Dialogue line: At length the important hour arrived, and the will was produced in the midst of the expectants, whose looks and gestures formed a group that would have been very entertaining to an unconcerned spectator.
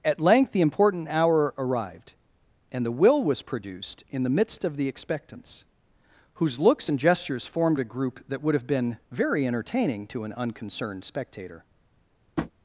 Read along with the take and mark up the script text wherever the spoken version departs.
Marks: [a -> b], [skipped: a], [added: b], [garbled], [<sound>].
At length the important hour arrived, and the will was produced in the midst of the expectants, whose looks and gestures formed a group that would have been very entertaining to an unconcerned spectator. [tap]